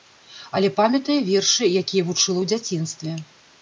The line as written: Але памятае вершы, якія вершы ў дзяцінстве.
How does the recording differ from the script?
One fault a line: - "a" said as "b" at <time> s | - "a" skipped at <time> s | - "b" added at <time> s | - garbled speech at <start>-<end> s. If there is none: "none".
- "вершы" said as "вучыла" at 2.1 s